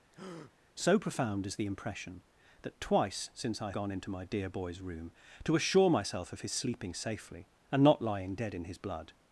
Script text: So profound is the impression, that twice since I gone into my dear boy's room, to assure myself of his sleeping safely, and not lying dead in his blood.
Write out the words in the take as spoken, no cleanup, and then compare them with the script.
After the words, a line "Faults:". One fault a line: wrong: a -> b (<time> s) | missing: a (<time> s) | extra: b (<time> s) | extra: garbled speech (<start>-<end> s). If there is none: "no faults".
So profound is the impression, that twice since I gone into my dear boy's room, to assure myself of his sleeping safely, and not lying dead in his blood.
Faults:
no faults